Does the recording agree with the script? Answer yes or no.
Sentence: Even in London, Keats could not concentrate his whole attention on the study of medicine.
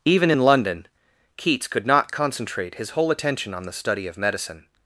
yes